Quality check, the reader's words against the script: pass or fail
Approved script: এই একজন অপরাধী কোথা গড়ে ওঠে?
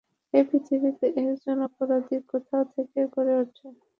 fail